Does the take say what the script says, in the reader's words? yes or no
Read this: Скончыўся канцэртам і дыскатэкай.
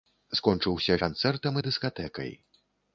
yes